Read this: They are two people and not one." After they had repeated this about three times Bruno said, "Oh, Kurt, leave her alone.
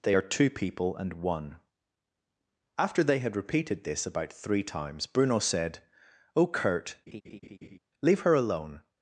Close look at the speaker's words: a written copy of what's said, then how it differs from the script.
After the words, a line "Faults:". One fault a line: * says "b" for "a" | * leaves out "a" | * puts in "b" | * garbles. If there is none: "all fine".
They are two people and one." After they had repeated this about three times Bruno said, "Oh, Kurt, leave her alone.
Faults:
* leaves out "not"